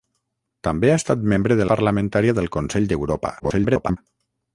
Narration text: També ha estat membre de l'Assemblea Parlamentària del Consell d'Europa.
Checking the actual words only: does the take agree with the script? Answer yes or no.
no